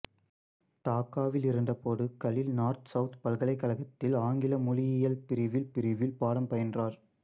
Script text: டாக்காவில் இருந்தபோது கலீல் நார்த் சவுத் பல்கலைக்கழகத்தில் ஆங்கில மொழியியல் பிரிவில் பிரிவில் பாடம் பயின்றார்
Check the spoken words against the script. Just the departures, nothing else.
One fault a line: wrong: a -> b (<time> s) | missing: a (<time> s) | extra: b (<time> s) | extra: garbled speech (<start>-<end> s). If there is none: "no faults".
no faults